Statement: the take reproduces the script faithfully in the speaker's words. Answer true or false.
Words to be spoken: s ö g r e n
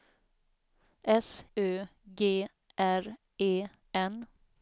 true